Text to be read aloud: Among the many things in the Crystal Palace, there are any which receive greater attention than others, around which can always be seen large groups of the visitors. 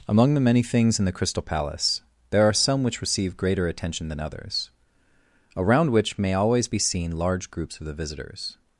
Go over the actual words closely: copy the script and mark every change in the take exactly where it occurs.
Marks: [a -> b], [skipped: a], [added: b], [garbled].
Among the many things in the Crystal Palace, there are [any -> some] which receive greater attention than others, around which [can -> may] always be seen large groups of the visitors.